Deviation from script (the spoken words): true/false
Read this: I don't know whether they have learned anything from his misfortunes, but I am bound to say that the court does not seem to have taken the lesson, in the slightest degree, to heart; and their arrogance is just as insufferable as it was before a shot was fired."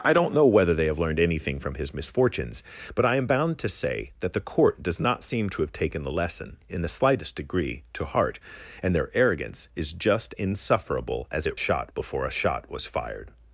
true